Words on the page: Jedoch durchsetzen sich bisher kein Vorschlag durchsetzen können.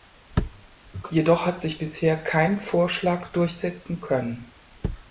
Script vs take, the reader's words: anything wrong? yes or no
yes